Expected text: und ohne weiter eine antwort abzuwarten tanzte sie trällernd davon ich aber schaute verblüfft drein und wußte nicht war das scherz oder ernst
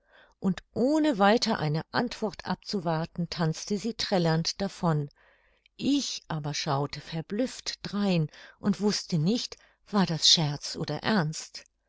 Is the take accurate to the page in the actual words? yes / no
yes